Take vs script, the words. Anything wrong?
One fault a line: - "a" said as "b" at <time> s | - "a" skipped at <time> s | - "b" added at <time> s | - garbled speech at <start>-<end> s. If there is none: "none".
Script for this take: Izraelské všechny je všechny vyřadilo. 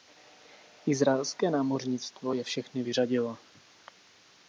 - "všechny" said as "námořnictvo" at 1.5 s